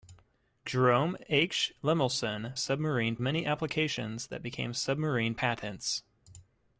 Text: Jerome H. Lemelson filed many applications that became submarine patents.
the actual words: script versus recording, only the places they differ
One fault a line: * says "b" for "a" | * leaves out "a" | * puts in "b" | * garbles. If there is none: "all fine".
* says "submarine" for "filed"